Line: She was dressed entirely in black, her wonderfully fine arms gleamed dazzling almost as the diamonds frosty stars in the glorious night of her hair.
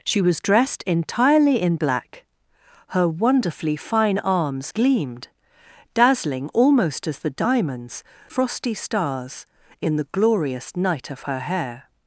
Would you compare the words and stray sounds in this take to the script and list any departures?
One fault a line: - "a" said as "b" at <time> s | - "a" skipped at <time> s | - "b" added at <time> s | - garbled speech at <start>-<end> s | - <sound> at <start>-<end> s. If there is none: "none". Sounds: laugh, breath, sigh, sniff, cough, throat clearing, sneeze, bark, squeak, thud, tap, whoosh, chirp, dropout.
none